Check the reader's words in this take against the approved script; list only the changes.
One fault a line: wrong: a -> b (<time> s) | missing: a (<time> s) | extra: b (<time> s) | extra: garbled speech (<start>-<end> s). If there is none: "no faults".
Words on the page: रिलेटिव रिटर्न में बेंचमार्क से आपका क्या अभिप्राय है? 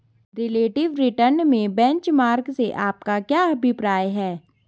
no faults